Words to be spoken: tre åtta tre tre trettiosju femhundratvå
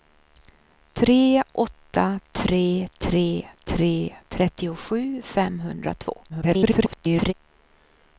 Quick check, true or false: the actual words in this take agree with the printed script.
false